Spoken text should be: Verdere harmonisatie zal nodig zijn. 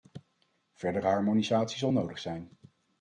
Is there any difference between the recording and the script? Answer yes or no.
no